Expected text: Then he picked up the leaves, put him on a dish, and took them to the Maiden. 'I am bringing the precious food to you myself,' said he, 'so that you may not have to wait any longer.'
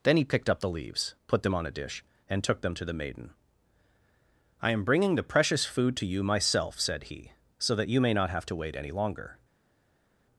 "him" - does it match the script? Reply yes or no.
no